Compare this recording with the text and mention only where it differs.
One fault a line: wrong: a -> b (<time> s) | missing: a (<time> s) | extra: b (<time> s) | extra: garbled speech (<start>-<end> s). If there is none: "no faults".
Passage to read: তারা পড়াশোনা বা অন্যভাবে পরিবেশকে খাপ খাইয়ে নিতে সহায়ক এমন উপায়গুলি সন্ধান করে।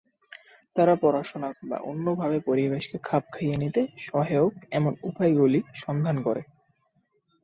no faults